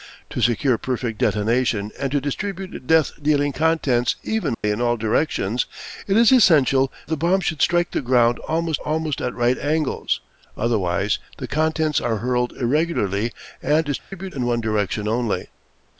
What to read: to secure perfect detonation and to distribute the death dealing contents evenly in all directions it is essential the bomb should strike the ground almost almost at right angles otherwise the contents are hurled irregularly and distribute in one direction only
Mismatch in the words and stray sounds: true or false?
true